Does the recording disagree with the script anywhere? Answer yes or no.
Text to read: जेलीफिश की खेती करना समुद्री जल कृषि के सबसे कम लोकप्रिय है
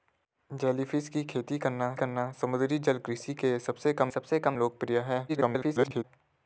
yes